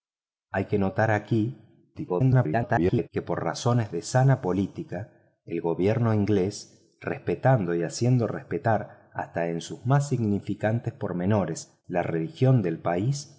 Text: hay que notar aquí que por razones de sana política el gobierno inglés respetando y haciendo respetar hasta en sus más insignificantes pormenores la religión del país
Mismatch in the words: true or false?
true